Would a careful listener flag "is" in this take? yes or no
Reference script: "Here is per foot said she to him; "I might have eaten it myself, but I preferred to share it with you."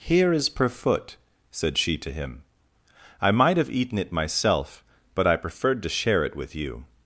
no